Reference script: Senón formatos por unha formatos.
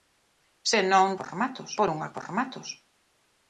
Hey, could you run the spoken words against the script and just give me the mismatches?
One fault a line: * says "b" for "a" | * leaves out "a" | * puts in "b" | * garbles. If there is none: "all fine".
all fine